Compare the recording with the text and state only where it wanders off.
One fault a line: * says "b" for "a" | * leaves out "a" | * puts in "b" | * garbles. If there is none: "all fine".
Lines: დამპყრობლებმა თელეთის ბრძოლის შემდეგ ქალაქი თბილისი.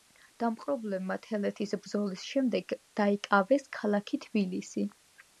* puts in "დაიკავეს"